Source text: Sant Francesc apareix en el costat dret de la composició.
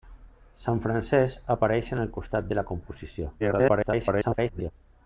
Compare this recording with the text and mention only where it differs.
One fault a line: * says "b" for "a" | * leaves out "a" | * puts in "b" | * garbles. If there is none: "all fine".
* leaves out "dret"
* garbles